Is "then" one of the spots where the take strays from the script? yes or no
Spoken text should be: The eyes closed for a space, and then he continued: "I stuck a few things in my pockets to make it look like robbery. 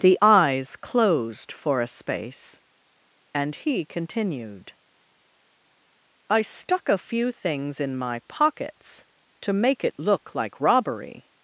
yes